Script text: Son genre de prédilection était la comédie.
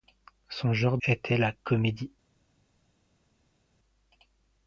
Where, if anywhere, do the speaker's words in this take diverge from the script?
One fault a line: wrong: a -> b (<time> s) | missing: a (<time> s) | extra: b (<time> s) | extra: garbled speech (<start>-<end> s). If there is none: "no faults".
missing: de prédilection (1.0 s)